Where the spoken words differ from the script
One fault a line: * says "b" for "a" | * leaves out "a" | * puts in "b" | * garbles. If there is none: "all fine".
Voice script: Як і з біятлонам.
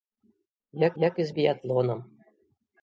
* puts in "як"